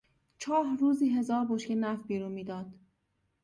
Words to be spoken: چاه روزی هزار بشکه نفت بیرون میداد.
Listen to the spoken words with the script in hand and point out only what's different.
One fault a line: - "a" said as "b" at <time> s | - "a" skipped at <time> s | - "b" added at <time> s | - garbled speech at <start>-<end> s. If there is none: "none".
none